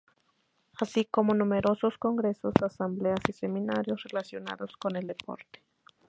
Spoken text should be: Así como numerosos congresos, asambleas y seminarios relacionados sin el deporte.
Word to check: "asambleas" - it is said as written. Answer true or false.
true